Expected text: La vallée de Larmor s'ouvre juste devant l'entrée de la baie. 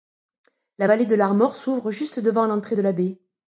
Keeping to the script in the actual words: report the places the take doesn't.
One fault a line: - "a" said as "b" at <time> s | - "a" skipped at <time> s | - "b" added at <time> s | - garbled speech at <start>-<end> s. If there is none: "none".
none